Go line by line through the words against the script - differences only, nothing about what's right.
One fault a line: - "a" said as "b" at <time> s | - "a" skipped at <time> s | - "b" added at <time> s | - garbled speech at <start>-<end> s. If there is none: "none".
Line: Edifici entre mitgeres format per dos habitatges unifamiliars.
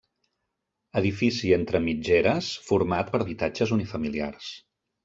- "dos" skipped at 3.2 s